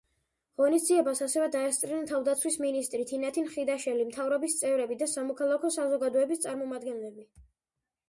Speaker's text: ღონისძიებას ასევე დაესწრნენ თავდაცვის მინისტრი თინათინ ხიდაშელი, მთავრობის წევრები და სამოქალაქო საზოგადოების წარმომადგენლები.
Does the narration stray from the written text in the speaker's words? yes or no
no